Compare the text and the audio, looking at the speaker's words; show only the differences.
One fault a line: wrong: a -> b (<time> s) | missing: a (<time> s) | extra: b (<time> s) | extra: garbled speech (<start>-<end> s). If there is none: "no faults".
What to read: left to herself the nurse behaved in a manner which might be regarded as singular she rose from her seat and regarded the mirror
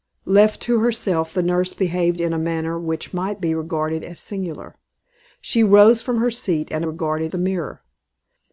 no faults